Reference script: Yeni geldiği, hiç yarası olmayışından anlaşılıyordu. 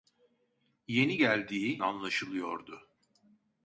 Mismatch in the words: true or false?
true